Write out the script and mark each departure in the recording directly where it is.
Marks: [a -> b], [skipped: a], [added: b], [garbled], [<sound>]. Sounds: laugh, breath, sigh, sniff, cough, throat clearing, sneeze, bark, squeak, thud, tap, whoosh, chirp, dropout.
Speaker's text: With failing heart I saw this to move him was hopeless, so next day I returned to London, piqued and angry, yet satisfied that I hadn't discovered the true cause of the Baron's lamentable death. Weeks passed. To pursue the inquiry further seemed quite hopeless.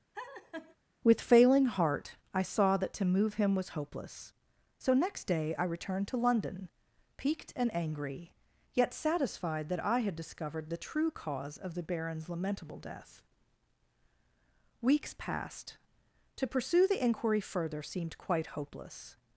[laugh] With failing heart I saw [this -> that] to move him was hopeless, so next day I returned to London, piqued and angry, yet satisfied that I [hadn't -> had] discovered the true cause of the Baron's lamentable death. Weeks passed. To pursue the inquiry further seemed quite hopeless.